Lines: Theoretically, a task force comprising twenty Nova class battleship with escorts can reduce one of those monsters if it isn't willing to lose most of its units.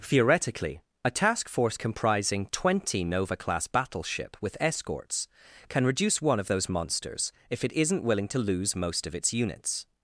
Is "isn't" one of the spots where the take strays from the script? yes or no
no